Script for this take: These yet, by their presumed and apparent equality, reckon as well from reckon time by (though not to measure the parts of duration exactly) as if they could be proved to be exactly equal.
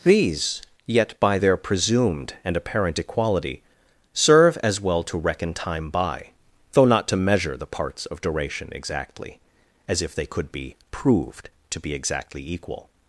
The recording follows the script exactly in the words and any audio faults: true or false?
false